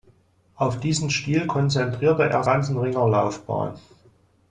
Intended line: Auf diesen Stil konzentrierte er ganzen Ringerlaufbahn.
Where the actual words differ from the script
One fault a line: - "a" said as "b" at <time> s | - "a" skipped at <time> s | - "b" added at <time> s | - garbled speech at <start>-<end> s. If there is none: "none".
none